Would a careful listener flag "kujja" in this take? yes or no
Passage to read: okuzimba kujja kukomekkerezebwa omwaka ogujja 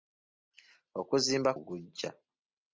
yes